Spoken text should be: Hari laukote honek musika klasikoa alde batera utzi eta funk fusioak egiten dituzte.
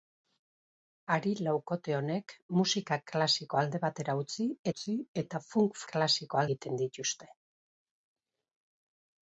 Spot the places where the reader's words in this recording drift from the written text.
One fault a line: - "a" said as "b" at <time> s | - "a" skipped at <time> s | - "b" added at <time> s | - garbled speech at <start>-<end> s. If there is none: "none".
- "utzi" added at 4.7 s
- "fusioak" said as "klasikoa" at 5.9 s